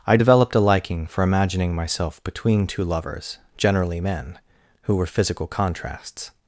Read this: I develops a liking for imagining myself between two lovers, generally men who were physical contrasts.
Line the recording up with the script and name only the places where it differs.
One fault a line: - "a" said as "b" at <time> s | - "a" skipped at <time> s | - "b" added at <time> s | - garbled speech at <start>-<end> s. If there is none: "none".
- "develops" said as "developed" at 0.1 s